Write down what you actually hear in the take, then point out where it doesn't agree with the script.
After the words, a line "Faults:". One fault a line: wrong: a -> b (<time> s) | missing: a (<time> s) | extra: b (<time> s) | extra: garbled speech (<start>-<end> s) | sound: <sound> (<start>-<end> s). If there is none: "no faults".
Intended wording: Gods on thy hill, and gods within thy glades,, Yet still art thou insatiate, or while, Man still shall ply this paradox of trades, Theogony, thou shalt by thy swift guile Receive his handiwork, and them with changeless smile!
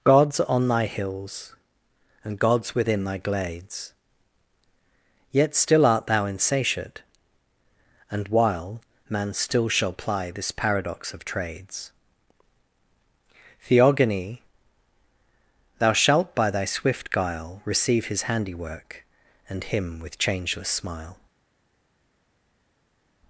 Gods on thy hills, and gods within thy glades,, Yet still art thou insatiate, and while, Man still shall ply this paradox of trades, Theogony, thou shalt by thy swift guile Receive his handiwork, and him with changeless smile!
Faults:
wrong: hill -> hills (0.9 s)
wrong: or -> and (8.1 s)
wrong: them -> him (19.6 s)